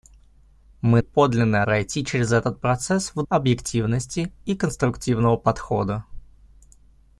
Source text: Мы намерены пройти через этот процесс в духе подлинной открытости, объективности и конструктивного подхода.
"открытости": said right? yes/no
no